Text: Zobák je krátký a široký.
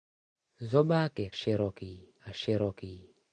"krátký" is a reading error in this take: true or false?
true